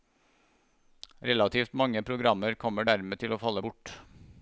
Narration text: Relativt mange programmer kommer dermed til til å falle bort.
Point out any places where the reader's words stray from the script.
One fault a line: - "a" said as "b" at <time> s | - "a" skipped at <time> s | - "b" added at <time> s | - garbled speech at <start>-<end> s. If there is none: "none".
- "til" skipped at 3.3 s